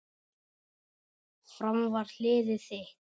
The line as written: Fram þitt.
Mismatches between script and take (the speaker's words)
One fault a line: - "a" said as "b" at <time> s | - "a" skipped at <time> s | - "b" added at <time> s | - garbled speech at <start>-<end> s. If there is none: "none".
- "var liðið" added at 2.0 s